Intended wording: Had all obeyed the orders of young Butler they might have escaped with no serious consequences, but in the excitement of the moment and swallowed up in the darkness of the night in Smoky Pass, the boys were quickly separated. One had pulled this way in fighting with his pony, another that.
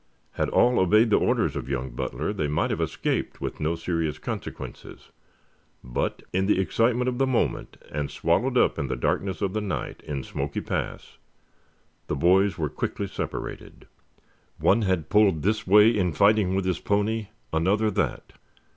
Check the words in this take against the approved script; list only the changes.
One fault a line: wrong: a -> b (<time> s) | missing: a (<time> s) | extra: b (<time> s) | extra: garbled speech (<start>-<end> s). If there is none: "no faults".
no faults